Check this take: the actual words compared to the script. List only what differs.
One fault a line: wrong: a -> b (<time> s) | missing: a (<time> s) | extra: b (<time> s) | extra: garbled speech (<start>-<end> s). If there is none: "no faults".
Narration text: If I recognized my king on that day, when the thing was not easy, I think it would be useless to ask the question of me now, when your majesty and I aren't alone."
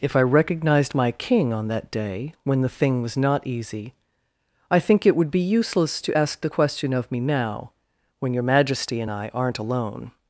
no faults